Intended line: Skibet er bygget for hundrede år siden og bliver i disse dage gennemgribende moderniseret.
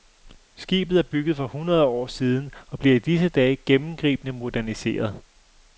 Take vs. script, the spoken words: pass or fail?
pass